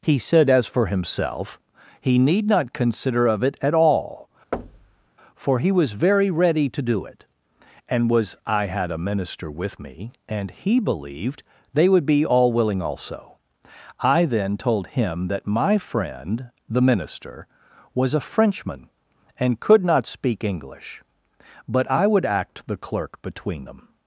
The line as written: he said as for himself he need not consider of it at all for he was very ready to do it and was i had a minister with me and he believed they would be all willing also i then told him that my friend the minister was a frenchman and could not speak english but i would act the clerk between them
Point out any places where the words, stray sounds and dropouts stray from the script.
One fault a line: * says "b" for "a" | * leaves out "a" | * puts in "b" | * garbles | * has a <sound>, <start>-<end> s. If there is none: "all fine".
* has a thud, 4.5-5.1 s